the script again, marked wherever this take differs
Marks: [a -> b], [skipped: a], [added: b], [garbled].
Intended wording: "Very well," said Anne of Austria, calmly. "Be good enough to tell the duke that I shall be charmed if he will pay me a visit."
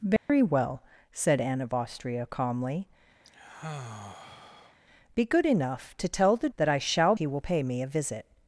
"Very well," said Anne of Austria, calmly. "Be good enough to tell the [skipped: duke] that I shall [skipped: be charmed if] he will pay me a visit."